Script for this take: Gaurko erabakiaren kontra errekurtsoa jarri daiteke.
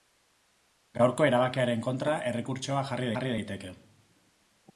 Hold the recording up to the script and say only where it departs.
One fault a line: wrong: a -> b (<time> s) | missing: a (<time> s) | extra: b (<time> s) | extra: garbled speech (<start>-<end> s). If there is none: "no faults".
extra: jarri (3.1 s)